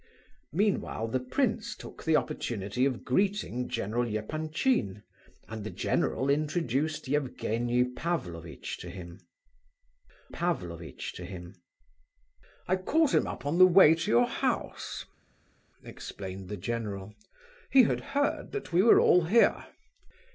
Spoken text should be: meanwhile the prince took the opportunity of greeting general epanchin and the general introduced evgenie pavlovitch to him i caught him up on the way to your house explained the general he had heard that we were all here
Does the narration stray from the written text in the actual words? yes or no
yes